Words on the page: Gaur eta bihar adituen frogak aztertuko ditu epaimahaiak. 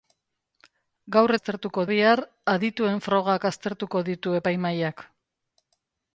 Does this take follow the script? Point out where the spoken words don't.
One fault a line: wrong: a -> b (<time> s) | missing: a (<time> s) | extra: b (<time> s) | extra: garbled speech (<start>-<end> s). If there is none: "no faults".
wrong: eta -> aztertuko (1.4 s)